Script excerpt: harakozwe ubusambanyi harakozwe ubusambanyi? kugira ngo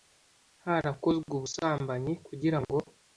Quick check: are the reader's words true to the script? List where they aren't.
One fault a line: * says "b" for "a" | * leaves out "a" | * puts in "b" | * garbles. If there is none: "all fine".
* leaves out "harakozwe ubusambanyi"